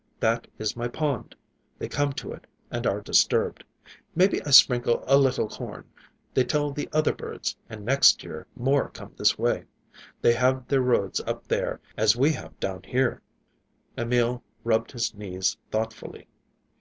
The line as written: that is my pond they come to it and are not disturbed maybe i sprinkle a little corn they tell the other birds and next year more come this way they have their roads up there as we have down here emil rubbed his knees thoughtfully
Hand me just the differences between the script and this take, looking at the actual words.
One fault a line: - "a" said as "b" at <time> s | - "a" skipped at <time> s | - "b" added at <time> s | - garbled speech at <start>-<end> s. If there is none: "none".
- "not" skipped at 3.0 s